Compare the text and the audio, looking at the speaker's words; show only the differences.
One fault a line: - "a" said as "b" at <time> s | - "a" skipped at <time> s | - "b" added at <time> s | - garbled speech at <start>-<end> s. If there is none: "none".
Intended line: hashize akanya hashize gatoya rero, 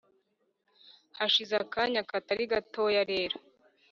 - "hashize" said as "katari" at 2.1 s